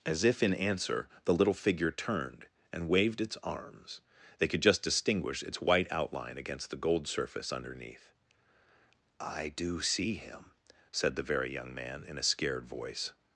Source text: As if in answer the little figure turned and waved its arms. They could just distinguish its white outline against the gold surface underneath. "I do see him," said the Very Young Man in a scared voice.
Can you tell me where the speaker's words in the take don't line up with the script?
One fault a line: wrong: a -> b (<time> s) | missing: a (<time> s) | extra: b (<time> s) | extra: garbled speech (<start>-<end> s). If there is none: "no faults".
no faults